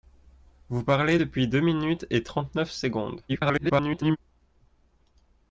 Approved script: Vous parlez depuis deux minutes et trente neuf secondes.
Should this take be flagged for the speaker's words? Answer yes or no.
yes